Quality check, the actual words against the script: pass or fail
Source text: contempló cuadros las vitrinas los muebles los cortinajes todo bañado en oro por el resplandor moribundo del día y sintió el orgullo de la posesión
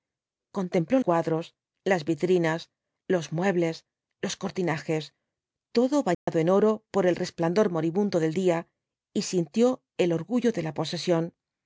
pass